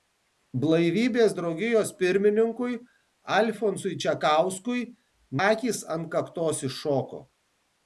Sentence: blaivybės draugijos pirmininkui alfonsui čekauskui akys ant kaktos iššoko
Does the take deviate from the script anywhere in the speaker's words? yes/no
no